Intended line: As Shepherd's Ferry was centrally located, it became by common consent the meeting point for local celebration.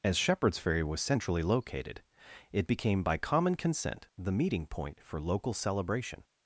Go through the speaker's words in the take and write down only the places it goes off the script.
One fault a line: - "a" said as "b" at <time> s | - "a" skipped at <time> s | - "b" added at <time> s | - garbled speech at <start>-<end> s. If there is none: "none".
none